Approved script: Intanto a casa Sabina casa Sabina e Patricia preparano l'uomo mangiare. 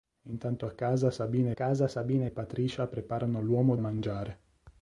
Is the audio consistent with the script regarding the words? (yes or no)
yes